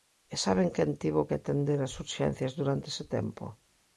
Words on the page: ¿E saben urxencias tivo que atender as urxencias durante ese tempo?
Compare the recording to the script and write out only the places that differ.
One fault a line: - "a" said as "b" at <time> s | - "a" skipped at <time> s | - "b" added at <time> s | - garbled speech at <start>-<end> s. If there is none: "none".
- "urxencias" said as "quen" at 0.7 s